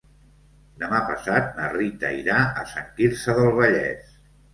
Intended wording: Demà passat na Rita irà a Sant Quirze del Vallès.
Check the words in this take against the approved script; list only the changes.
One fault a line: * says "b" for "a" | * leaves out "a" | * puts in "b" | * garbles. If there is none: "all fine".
all fine